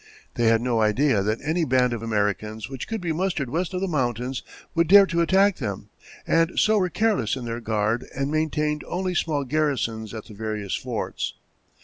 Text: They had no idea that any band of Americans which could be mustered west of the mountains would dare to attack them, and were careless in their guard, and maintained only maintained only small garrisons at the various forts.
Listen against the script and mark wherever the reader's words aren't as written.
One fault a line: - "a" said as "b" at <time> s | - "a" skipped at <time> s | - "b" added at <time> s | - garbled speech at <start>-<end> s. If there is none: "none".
- "so" added at 6.6 s
- "maintained only" skipped at 9.2 s